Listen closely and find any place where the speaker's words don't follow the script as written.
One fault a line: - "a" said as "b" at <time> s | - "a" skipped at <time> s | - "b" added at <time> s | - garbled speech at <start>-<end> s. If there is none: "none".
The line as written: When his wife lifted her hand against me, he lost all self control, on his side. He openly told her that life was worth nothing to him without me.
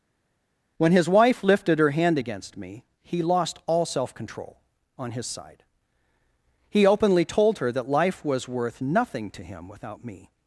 none